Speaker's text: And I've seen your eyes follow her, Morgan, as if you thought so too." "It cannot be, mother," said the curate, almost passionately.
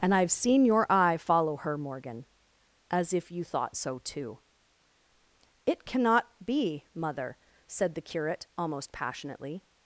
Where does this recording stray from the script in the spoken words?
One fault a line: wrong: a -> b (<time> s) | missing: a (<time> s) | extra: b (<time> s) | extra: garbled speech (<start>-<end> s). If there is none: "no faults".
wrong: eyes -> eye (0.9 s)